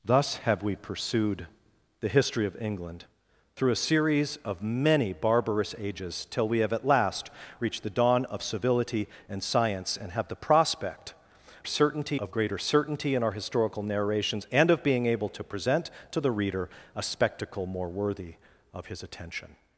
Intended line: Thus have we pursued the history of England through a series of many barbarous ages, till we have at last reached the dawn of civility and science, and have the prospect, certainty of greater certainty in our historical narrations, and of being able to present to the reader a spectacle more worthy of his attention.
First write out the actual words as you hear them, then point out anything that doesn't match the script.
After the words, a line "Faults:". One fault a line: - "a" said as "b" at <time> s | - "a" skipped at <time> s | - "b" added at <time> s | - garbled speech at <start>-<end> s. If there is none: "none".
Thus have we pursued the history of England through a series of many barbarous ages, till we have at last reached the dawn of civility and science, and have the prospect, certainty of greater certainty in our historical narrations, and of being able to present to the reader a spectacle more worthy of his attention.
Faults:
none